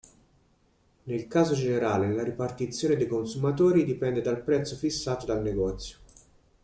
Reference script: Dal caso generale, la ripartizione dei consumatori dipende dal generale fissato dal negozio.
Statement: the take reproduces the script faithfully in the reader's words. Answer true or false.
false